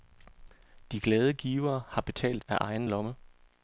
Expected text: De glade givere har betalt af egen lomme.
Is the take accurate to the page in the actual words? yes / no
yes